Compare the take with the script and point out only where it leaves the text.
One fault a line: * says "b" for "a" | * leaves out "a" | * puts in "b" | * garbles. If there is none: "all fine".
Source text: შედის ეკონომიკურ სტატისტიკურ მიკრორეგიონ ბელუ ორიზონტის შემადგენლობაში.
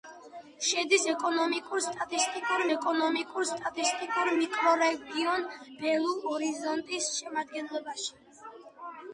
* puts in "ეკონომიკურ სტატისტიკურ"